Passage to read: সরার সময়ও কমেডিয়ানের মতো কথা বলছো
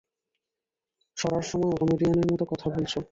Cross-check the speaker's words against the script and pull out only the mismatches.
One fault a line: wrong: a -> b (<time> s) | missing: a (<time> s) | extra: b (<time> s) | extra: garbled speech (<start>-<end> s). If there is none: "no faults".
no faults